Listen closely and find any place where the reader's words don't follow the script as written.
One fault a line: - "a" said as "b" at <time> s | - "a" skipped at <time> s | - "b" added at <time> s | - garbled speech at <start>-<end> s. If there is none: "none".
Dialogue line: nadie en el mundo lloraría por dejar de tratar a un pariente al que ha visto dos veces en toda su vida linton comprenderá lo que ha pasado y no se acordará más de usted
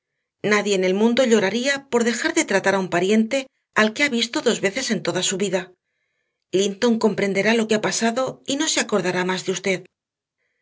none